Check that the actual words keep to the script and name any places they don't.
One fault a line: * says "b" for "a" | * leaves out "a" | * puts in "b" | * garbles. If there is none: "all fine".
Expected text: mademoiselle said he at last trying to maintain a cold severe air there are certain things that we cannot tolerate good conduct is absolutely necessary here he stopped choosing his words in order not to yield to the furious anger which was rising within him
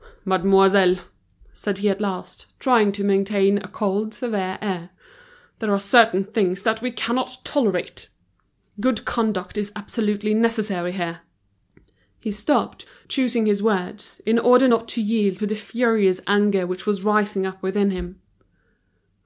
* puts in "up"